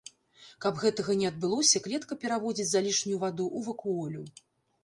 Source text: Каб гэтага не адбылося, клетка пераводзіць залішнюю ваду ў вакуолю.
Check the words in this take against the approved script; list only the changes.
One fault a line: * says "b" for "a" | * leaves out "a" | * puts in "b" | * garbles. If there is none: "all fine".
all fine